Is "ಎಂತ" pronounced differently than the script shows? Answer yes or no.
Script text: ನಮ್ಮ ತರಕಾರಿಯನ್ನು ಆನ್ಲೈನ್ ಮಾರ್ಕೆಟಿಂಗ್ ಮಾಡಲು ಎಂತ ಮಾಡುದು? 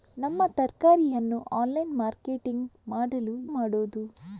yes